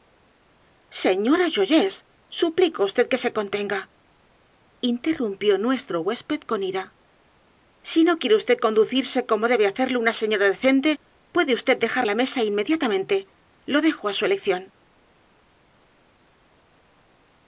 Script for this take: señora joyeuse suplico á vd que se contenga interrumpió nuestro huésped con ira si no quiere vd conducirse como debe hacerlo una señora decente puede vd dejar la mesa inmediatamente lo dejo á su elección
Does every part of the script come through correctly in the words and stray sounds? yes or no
yes